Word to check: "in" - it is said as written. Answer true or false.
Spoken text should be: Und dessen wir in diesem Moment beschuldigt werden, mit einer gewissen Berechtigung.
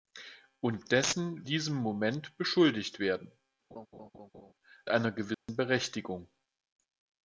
false